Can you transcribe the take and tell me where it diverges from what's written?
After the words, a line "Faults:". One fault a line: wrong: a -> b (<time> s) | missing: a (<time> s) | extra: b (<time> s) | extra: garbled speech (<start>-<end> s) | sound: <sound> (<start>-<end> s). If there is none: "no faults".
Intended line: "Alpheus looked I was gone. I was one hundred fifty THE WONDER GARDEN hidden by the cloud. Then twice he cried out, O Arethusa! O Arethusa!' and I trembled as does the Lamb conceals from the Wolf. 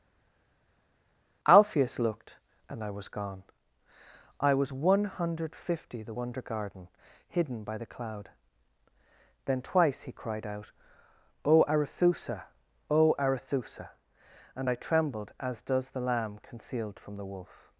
"Alpheus looked and I was gone. I was one hundred fifty THE WONDER GARDEN hidden by the cloud. Then twice he cried out, O Arethusa! O Arethusa!' and I trembled as does the Lamb concealed from the Wolf.
Faults:
extra: and (2.7 s)
wrong: conceals -> concealed (16.4 s)